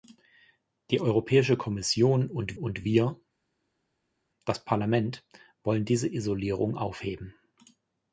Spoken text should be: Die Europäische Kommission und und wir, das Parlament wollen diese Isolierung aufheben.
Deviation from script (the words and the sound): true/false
false